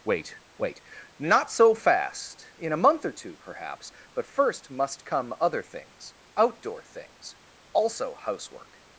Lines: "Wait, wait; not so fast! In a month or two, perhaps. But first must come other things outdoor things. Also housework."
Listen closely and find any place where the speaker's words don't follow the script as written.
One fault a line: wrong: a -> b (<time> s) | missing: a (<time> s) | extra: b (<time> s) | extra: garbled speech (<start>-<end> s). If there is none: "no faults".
no faults